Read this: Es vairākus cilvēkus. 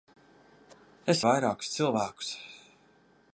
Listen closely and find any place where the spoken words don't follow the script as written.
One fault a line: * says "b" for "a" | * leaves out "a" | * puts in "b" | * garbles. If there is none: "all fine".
all fine